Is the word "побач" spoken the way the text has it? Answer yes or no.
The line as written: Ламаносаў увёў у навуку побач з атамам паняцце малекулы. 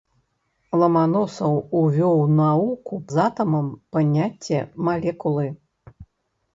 no